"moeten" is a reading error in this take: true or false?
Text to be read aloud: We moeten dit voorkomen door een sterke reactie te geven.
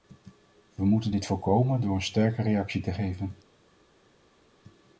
false